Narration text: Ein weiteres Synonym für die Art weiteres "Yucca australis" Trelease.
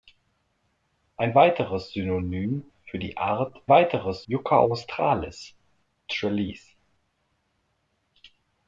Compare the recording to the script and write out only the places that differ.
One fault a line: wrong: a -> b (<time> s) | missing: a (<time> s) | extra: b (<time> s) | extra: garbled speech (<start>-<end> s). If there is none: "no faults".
no faults